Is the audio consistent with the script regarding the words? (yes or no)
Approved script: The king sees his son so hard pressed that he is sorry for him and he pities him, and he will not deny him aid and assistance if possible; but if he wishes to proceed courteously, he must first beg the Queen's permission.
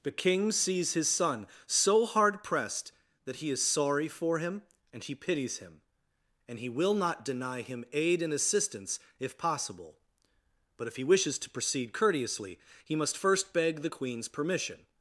yes